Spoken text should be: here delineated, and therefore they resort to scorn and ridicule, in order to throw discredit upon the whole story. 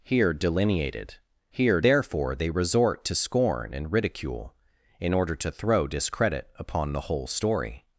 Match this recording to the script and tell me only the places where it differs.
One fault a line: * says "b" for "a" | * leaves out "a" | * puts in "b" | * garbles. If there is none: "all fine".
* says "here" for "and"